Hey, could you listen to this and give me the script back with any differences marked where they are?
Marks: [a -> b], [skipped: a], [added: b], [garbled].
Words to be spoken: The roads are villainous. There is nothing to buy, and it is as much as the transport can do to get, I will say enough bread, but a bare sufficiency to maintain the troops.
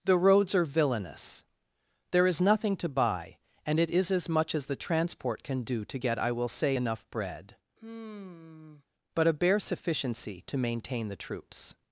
The roads are villainous. There is nothing to buy, and it is as much as the transport can do to get, I will say enough bread, but a bare sufficiency to maintain the troops.